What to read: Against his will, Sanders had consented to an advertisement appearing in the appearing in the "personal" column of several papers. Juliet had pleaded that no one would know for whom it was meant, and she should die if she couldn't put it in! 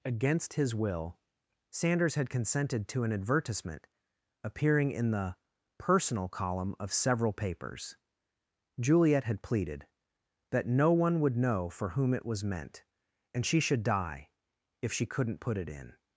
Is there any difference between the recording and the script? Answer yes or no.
yes